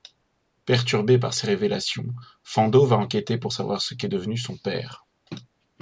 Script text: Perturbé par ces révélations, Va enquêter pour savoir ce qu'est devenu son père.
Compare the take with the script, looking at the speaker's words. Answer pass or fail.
fail